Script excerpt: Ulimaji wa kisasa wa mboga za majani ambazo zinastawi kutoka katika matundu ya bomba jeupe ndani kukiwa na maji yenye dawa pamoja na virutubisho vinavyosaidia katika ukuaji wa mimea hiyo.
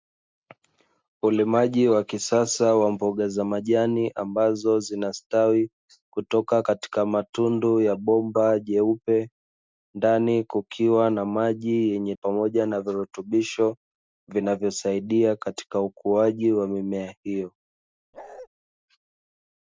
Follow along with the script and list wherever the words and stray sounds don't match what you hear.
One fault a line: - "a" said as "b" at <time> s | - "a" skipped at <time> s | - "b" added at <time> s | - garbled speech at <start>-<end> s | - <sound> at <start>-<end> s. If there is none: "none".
- "dawa" skipped at 12.1 s
- bark at 18.1-18.5 s